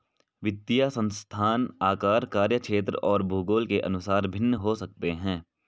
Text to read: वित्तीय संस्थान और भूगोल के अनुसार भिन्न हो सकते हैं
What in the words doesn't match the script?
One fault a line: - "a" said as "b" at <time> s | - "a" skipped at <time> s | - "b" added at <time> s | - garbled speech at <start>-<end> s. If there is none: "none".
- "आकार कार्यक्षेत्र" added at 1.8 s